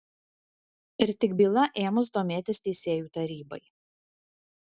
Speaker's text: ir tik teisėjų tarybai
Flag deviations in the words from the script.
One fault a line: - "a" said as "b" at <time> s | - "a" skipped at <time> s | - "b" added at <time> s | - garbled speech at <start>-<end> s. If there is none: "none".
- "byla ėmus domėtis" added at 1.4 s